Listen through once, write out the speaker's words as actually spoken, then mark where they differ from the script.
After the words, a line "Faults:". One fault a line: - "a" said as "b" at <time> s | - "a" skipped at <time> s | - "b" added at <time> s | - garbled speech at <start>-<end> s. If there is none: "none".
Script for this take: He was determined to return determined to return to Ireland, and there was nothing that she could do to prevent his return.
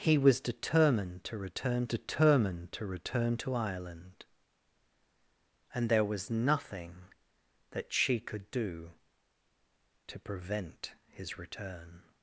He was determined to return determined to return to Ireland, and there was nothing that she could do to prevent his return.
Faults:
none